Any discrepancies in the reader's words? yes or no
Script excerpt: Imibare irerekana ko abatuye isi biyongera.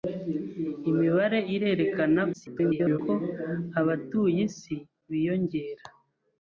yes